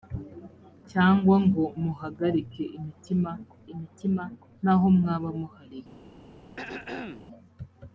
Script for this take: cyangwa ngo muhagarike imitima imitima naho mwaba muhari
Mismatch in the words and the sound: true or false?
true